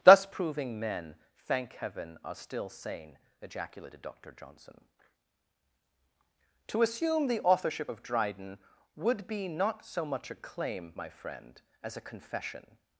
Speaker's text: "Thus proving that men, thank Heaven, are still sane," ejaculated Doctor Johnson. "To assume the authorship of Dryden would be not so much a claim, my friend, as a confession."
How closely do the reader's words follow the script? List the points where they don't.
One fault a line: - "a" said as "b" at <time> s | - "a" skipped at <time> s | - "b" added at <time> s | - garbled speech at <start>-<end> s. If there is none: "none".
- "that" skipped at 0.8 s